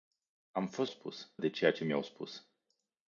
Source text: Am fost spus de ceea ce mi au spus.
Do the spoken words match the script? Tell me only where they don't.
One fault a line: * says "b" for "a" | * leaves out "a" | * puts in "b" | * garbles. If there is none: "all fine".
all fine